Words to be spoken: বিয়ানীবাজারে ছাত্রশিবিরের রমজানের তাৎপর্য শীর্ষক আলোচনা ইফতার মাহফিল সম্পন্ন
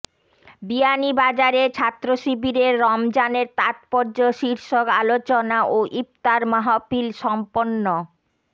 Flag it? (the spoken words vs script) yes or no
yes